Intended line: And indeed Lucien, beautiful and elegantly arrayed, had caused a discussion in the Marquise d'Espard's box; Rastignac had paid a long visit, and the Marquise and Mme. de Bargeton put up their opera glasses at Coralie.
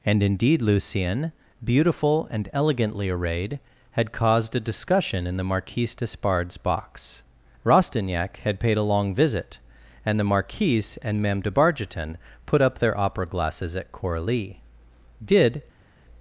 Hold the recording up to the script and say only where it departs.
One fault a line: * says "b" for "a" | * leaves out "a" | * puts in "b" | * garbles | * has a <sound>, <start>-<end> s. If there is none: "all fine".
* puts in "Did"